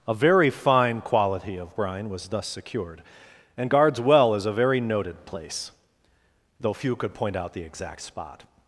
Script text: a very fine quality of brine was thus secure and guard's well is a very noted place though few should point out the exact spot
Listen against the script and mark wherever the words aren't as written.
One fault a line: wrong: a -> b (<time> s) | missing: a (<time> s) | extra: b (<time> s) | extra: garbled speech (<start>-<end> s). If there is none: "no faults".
wrong: secure -> secured (2.4 s)
wrong: should -> could (6.9 s)